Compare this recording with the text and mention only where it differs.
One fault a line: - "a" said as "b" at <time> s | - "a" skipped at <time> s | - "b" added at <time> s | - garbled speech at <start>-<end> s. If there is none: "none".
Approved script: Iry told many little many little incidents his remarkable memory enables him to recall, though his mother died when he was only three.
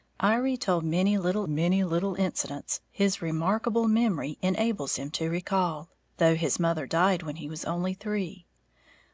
none